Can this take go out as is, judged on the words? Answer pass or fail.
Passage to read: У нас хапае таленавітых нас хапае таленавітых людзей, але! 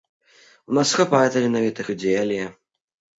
fail